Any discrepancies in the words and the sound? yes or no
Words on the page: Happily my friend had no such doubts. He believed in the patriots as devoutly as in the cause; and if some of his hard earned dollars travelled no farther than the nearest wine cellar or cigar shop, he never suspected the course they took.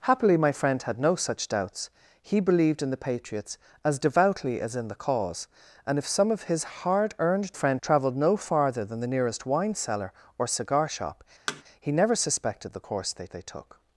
yes